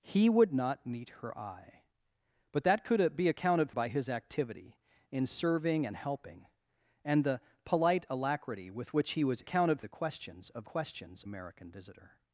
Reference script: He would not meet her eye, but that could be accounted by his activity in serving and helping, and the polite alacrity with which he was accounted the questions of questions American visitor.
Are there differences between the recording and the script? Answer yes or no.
no